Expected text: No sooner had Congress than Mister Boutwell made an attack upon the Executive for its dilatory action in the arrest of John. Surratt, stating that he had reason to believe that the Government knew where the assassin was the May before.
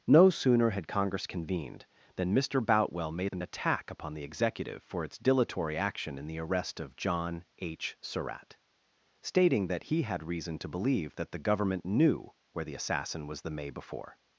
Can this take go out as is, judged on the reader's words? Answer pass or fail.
fail